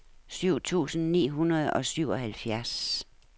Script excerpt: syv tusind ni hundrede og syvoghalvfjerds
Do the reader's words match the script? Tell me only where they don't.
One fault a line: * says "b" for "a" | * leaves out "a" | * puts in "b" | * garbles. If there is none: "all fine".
all fine